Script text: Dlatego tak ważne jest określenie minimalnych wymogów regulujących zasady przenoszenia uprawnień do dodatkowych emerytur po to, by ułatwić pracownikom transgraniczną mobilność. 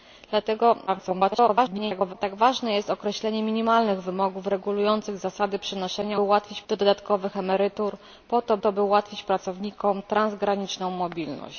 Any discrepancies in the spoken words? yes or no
yes